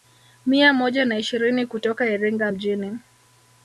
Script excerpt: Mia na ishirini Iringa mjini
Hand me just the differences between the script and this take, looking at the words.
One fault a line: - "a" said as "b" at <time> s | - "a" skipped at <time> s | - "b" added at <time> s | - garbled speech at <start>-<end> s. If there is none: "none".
- "moja" added at 0.7 s
- "kutoka" added at 1.6 s